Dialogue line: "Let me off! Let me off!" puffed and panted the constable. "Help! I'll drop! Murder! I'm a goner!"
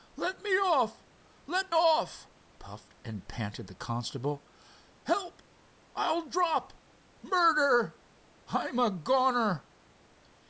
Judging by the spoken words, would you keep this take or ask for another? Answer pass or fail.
fail